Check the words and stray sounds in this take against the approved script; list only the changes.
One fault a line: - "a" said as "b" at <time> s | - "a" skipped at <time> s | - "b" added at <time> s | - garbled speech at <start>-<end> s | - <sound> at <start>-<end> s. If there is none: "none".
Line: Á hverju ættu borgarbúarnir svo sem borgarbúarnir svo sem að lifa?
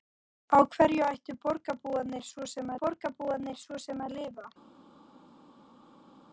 none